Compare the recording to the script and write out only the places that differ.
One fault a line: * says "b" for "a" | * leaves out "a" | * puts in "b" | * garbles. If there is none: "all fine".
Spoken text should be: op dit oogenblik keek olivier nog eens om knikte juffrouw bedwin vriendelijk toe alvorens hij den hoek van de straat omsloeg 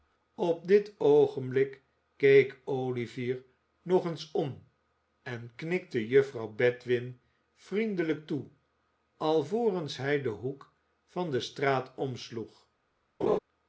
* puts in "en"